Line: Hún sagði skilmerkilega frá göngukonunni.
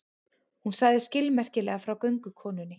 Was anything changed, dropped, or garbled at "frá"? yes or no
no